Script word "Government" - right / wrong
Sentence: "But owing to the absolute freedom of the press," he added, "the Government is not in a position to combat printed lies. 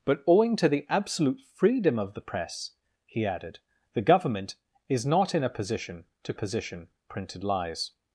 right